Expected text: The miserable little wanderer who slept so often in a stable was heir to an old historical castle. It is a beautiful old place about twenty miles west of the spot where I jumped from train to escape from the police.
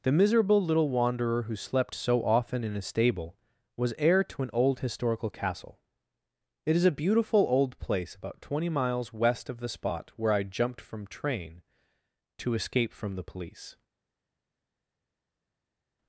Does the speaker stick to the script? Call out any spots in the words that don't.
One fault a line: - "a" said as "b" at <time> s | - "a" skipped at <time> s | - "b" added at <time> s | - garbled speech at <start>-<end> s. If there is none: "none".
none